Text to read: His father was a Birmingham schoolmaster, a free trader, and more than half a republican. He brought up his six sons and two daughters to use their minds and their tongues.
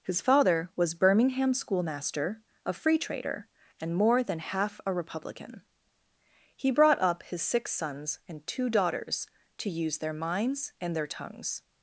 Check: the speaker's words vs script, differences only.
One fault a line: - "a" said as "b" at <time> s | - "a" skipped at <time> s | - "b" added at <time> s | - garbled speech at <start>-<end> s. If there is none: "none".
- "a" skipped at 0.9 s